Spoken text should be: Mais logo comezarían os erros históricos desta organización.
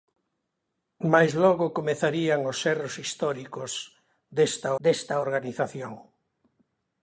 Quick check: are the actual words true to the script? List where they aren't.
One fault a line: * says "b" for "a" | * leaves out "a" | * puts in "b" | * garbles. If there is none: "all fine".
* puts in "desta"